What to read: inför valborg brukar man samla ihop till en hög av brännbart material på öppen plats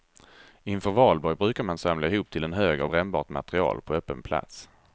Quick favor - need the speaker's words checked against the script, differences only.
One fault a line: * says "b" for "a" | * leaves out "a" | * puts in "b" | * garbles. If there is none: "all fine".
all fine